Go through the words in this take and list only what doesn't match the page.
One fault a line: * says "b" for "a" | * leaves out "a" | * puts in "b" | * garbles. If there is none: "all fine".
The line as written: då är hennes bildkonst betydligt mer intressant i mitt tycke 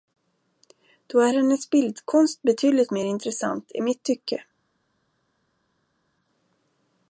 all fine